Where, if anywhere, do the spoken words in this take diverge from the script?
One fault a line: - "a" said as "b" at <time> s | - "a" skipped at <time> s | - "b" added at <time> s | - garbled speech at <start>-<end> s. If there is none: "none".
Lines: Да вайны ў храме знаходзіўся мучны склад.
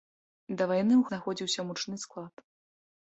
- "храме" skipped at 1.0 s